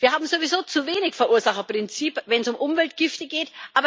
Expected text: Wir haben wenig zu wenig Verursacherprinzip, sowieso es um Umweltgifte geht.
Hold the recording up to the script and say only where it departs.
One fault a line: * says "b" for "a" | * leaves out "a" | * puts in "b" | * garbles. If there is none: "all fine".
* says "sowieso" for "wenig"
* says "wenn" for "sowieso"